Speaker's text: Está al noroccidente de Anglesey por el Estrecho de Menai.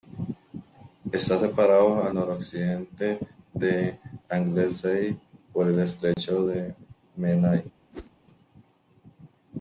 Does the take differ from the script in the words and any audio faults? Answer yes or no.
yes